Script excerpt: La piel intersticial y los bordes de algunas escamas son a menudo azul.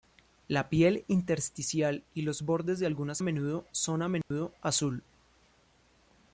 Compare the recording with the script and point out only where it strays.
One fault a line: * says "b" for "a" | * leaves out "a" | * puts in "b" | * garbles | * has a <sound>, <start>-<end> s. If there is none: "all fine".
* says "menudo" for "escamas"
* has a dropout, 4.2-4.3 s